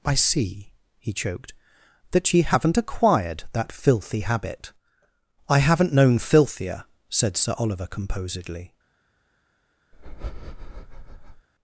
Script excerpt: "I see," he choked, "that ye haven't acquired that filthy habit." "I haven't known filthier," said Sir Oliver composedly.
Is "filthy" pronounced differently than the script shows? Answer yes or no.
no